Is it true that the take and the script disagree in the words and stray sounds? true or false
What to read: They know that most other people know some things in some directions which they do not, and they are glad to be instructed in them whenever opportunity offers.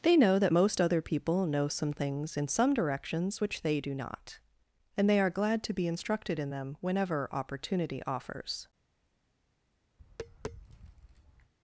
true